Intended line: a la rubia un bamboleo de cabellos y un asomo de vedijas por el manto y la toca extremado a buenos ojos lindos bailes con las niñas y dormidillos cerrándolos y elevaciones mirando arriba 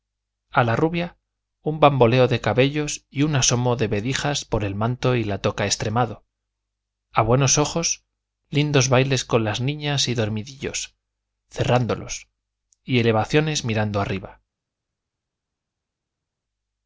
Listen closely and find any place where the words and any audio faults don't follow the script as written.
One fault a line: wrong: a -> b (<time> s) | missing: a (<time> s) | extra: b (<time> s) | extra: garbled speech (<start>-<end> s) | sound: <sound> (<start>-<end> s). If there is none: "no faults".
no faults